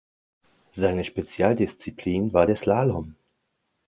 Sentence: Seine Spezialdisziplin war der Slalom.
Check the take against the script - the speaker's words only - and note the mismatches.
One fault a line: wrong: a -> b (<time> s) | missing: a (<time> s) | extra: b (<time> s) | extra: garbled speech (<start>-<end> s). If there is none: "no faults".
no faults